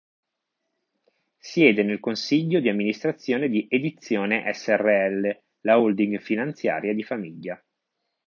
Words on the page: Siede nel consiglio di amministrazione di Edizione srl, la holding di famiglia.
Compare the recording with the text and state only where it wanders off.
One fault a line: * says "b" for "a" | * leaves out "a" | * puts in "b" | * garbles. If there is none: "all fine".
* puts in "finanziaria"